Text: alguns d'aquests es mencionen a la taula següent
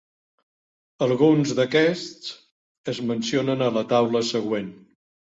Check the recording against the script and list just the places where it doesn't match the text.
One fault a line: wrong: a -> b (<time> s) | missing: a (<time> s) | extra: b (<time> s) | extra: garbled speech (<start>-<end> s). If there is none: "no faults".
no faults